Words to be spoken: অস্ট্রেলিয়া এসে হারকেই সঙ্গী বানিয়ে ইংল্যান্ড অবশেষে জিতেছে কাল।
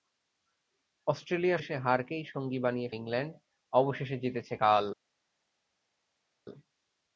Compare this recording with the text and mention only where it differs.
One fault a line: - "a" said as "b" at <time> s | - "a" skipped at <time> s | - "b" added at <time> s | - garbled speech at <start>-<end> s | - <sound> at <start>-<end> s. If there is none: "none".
none